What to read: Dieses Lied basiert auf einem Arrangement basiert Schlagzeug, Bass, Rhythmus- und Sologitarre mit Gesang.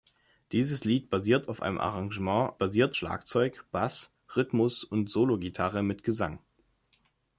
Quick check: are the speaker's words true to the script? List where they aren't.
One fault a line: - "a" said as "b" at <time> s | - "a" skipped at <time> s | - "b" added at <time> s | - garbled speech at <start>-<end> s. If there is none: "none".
none